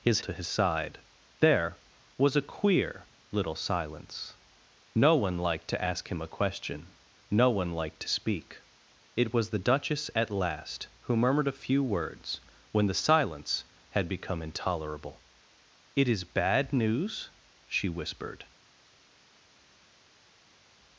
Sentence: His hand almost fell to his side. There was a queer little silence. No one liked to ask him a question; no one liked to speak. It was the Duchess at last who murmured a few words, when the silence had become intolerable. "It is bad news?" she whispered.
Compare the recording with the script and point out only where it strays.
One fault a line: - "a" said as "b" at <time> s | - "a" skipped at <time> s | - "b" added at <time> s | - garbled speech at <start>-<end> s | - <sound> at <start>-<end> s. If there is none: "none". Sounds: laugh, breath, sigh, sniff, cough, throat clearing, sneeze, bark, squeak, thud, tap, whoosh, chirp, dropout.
- "hand almost fell" skipped at 0.2 s